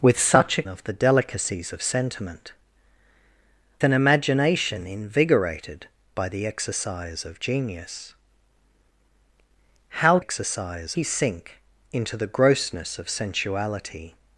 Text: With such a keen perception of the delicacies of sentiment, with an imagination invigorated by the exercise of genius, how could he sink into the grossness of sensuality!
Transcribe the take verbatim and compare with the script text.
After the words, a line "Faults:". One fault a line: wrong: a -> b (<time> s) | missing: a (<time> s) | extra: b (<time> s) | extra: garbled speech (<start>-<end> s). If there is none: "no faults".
With such a of the delicacies of sentiment, an imagination invigorated by the exercise of genius, how exercise he sink into the grossness of sensuality!
Faults:
missing: keen perception (0.6 s)
missing: with (2.5 s)
wrong: could -> exercise (10.2 s)